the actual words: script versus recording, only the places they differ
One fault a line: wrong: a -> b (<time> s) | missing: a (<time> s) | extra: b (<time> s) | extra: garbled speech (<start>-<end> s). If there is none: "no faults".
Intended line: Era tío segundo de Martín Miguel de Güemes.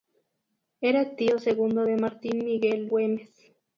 missing: de (2.9 s)